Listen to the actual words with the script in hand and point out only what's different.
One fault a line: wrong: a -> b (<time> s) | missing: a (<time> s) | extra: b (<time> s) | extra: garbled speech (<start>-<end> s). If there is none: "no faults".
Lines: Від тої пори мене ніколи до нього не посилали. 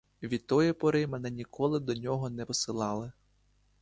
no faults